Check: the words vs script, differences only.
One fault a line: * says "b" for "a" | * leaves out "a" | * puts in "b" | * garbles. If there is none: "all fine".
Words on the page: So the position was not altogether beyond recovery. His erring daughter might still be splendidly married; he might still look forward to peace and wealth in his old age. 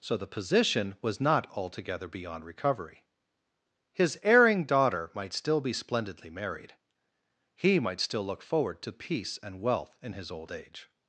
all fine